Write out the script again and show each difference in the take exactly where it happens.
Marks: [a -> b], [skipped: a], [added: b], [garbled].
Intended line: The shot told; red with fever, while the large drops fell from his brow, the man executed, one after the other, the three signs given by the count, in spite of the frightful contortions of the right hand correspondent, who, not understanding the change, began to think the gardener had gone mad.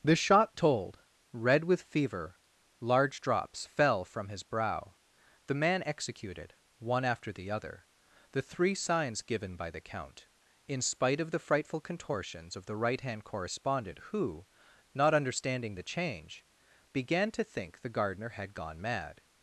The shot told; red with fever, [skipped: while the] large drops fell from his brow, the man executed, one after the other, the three signs given by the count, in spite of the frightful contortions of the right hand correspondent, who, not understanding the change, began to think the gardener had gone mad.